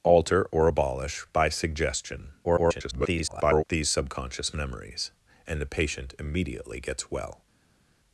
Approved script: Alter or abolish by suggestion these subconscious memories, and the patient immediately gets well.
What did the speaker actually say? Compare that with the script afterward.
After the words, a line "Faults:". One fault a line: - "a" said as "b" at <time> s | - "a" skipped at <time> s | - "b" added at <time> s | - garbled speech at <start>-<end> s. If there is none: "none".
Alter or abolish by suggestion [garbled] these subconscious memories, and the patient immediately gets well.
Faults:
- garbled speech at 2.4-3.6 s